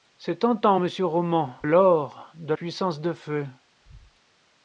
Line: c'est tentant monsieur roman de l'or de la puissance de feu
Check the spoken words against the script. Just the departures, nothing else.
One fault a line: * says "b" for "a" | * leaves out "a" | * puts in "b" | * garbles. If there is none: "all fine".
* leaves out "de"
* leaves out "la"